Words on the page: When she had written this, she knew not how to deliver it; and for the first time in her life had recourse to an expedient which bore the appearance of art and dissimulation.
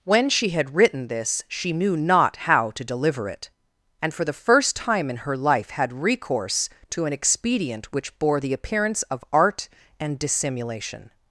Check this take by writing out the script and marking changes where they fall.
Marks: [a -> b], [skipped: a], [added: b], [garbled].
When she had written this, she knew not how to deliver it; and for the first time in her life had recourse to an expedient which bore the appearance of art and dissimulation.